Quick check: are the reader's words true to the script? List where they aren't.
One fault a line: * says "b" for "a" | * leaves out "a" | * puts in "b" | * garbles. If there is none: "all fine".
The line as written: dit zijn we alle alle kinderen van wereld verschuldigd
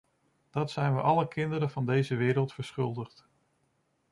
* says "dat" for "dit"
* leaves out "alle"
* puts in "deze"